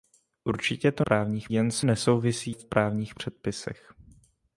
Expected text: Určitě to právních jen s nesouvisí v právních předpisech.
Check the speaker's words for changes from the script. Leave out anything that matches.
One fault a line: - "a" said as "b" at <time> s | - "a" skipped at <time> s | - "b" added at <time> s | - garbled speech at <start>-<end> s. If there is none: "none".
none